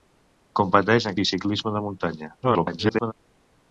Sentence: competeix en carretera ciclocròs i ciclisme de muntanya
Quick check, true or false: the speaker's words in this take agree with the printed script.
false